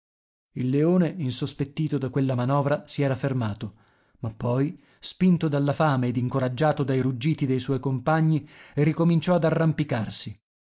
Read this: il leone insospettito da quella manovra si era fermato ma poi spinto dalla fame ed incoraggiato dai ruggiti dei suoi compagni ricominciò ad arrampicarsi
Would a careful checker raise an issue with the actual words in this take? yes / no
no